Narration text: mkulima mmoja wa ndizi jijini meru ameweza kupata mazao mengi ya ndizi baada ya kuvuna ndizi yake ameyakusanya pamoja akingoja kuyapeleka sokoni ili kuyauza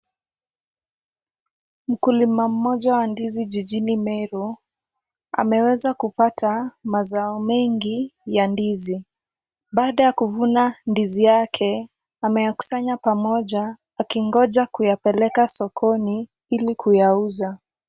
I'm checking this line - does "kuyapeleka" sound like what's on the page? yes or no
yes